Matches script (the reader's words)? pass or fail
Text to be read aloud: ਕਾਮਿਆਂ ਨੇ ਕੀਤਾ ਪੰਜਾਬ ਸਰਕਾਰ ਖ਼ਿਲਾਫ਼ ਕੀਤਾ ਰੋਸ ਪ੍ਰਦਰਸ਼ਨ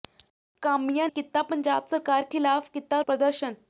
fail